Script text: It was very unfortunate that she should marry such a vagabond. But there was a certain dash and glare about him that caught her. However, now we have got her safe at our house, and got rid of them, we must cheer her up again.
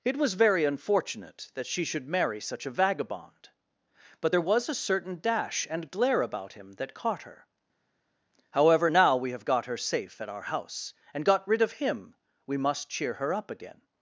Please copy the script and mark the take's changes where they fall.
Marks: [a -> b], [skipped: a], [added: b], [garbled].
It was very unfortunate that she should marry such a vagabond. But there was a certain dash and glare about him that caught her. However, now we have got her safe at our house, and got rid of [them, -> him] we must cheer her up again.